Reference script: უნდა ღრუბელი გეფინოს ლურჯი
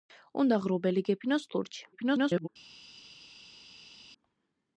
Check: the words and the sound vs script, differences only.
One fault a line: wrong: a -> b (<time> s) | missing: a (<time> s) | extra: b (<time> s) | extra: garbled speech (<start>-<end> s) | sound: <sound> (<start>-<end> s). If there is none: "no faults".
extra: garbled speech (1.9-2.5 s)